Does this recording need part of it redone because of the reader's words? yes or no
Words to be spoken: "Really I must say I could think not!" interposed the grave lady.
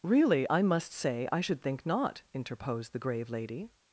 yes